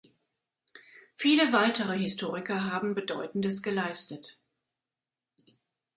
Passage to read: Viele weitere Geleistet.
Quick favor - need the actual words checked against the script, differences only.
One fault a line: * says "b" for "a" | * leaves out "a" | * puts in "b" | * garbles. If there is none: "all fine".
* puts in "Historiker haben Bedeutendes"